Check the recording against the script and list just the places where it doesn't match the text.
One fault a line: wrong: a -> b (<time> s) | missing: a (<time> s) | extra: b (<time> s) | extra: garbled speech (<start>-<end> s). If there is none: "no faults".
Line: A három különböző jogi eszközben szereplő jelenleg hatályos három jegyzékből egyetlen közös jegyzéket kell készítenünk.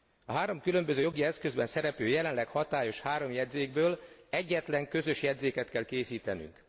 no faults